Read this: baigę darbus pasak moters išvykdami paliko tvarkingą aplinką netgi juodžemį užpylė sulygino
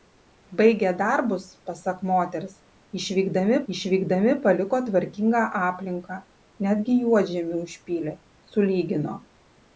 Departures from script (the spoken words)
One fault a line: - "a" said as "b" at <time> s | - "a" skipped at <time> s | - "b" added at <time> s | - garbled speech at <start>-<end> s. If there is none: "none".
- "išvykdami" added at 3.7 s